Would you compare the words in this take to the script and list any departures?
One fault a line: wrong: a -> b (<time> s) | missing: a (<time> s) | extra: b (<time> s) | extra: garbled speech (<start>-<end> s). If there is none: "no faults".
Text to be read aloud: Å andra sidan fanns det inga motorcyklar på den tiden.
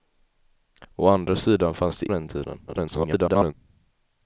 missing: inga motorcyklar på (2.1 s)
extra: garbled speech (2.7-3.5 s)